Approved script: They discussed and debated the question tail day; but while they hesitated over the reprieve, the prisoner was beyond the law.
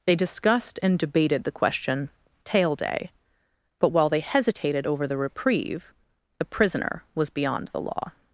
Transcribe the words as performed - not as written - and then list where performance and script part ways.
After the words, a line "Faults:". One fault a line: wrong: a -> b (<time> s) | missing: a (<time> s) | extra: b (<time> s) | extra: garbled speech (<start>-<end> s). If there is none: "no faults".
They discussed and debated the question tail day; but while they hesitated over the reprieve, the prisoner was beyond the law.
Faults:
no faults